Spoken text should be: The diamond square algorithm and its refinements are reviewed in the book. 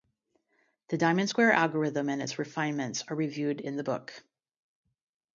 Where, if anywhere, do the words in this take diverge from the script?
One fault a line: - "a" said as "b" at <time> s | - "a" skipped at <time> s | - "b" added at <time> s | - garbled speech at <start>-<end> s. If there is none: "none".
none